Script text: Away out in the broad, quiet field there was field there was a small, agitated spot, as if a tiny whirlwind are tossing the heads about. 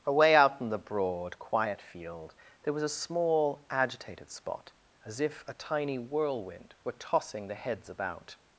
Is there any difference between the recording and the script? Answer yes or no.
yes